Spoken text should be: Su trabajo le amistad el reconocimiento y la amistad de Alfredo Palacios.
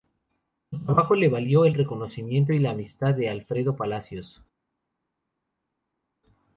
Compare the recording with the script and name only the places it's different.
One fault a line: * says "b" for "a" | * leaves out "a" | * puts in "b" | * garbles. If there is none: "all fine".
* says "valió" for "amistad"